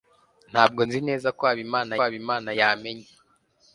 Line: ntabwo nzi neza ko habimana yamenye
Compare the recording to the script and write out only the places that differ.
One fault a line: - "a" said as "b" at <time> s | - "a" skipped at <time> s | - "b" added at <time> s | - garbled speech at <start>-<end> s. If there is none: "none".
- "habimana" added at 2.0 s